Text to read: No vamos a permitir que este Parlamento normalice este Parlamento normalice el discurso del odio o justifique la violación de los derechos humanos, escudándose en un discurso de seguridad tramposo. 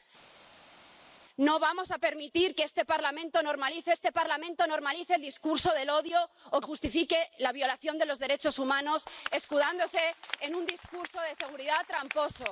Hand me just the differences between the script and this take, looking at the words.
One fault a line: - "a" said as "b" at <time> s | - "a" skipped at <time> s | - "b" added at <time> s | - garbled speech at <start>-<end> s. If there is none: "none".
none